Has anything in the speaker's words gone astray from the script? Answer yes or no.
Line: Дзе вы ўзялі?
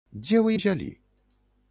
no